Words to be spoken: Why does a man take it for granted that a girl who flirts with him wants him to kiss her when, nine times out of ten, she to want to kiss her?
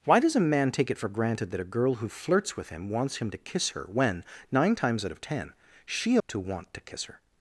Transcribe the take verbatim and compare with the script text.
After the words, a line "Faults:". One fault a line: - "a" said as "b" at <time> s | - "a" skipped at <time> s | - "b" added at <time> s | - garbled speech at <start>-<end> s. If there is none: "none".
Why does a man take it for granted that a girl who flirts with him wants him to kiss her when, nine times out of ten, she to want to kiss her?
Faults:
none